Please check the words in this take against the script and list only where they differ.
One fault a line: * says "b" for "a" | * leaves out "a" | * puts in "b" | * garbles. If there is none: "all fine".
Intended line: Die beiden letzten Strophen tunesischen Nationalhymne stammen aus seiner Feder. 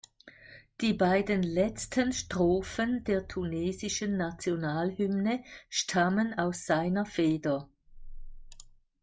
* puts in "der"